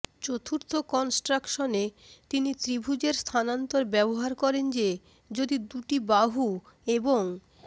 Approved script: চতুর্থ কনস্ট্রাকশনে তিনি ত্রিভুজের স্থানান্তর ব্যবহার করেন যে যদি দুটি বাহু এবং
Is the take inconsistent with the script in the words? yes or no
no